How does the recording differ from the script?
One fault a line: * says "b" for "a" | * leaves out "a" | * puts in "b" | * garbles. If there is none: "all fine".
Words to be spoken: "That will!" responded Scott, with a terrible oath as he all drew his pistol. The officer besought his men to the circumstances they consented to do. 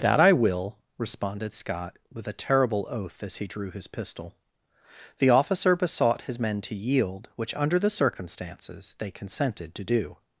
* puts in "I"
* leaves out "all"
* puts in "yield which under"